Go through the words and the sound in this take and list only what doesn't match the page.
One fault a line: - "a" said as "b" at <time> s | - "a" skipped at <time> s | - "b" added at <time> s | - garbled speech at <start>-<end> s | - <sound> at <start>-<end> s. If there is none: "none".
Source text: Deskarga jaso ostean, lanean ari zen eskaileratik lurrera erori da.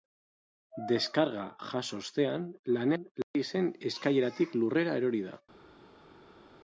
none